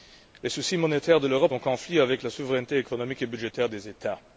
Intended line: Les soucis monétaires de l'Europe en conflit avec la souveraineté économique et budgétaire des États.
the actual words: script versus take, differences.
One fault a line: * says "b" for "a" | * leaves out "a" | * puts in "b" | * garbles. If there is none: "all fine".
all fine